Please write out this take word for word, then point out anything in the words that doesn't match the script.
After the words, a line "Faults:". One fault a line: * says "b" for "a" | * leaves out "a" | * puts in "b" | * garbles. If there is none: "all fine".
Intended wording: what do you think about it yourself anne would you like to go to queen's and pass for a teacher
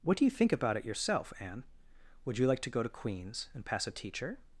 what do you think about it yourself anne would you like to go to queen's and pass a teacher
Faults:
* leaves out "for"